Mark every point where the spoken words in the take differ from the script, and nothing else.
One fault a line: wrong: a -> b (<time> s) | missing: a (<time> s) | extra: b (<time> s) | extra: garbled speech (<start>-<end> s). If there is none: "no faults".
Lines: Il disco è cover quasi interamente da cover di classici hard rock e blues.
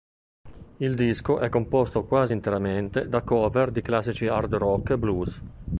wrong: cover -> composto (1.5 s)